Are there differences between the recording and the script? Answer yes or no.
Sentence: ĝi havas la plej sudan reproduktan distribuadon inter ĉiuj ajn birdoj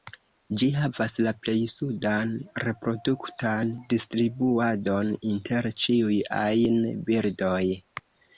no